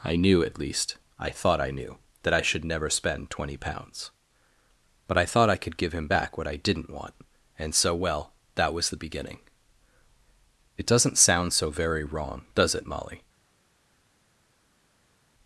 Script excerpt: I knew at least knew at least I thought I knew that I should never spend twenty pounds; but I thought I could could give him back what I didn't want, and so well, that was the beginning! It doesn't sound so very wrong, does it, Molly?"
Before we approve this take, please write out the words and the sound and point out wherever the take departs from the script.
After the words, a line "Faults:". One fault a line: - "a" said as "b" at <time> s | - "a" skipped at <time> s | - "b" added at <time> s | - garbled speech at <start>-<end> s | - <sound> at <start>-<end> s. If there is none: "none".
I knew at least I thought I knew that I should never spend twenty pounds; but I thought I could give him back what I didn't want, and so well, that was the beginning! It doesn't sound so very wrong, does it, Molly?"
Faults:
- "knew at least" skipped at 1.0 s
- "could" skipped at 5.8 s